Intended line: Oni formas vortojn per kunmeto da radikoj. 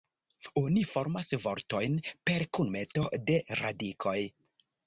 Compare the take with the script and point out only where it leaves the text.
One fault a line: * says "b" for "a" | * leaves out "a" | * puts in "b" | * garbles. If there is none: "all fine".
* says "de" for "da"